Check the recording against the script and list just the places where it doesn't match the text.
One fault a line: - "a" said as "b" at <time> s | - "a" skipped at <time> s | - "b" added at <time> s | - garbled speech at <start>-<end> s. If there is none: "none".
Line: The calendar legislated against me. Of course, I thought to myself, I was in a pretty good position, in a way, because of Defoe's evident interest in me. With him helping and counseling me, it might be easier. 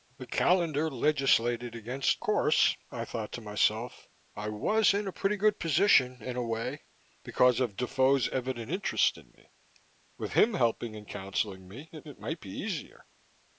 - "me Of" skipped at 2.2 s
- "it" added at 12.0 s